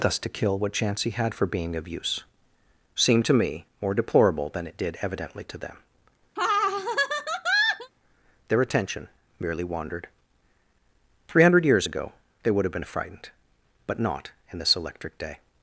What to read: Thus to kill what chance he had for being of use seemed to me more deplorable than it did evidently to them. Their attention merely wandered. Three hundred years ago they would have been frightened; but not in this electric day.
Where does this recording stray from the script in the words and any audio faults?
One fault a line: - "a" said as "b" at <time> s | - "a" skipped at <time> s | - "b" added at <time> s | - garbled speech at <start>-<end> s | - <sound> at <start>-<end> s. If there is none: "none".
- laugh at 6.4-7.9 s